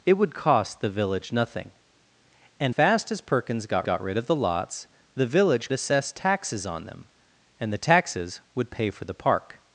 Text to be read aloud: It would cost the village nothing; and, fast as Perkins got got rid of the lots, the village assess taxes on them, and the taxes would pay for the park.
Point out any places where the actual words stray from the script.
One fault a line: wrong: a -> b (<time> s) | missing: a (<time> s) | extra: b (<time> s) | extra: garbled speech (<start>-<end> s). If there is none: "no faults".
no faults